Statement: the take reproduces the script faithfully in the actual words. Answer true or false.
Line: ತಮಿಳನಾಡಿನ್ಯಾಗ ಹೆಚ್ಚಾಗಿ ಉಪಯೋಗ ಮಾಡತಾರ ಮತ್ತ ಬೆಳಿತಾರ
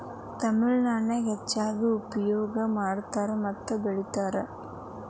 true